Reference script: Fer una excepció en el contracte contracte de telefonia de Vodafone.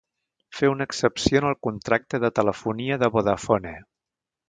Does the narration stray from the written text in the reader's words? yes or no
yes